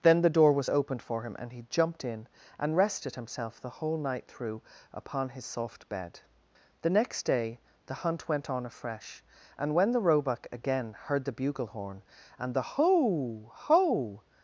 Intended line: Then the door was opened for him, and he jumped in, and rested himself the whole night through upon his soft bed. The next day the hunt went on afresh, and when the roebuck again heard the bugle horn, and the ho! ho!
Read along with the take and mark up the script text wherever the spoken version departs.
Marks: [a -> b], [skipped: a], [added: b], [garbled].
Then the door was opened for him, and he jumped in, and rested himself the whole night through upon his soft bed. The next day the hunt went on afresh, and when the roebuck again heard the bugle horn, and the ho! ho!